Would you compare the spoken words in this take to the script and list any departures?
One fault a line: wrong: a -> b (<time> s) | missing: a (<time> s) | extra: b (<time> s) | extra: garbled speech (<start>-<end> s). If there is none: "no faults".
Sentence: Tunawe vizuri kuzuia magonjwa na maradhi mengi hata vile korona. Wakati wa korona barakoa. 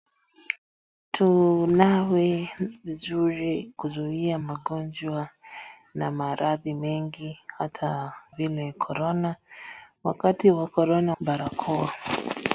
no faults